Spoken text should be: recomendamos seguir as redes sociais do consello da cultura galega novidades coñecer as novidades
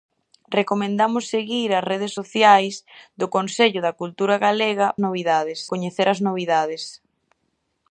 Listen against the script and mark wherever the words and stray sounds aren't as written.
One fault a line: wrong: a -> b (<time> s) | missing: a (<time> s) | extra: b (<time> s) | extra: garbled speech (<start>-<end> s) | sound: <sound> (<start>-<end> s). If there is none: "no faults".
no faults